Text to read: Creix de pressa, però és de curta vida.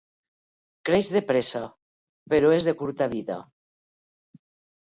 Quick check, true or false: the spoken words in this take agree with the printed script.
true